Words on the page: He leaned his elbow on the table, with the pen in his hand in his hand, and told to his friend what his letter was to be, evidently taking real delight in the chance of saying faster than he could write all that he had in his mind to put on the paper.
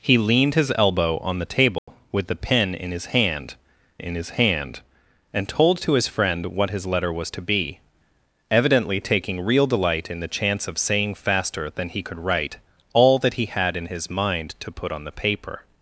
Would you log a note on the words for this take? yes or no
no